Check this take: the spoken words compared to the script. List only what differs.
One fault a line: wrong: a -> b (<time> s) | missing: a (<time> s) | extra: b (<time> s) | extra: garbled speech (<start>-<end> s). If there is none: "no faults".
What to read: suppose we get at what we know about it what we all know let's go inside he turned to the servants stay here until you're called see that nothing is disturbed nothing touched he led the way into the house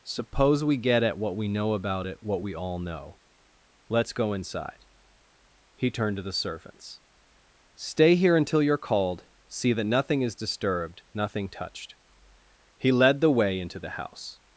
no faults